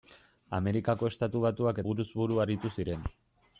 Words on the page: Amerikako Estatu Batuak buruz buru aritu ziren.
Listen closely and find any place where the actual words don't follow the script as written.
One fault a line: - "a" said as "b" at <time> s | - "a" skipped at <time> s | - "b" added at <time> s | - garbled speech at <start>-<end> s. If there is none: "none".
none